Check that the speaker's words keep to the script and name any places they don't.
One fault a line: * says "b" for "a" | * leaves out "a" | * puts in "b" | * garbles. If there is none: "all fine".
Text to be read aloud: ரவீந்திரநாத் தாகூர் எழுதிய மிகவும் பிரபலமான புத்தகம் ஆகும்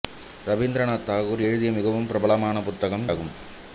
all fine